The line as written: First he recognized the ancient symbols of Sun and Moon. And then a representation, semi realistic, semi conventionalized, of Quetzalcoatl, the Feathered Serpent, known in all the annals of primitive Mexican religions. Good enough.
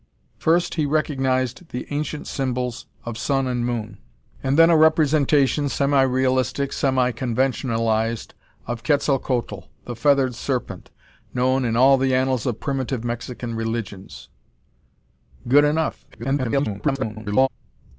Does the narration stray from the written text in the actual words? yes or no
yes